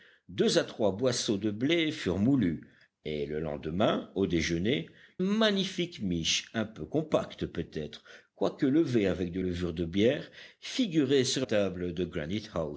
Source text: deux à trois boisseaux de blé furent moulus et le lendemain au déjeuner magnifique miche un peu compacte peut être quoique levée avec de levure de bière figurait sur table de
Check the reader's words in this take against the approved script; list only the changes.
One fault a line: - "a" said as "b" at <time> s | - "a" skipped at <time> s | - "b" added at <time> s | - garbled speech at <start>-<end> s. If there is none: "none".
none